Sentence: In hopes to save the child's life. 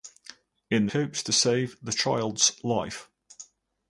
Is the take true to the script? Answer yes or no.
yes